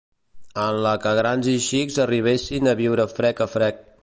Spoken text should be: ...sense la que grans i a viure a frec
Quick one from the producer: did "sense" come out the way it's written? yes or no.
no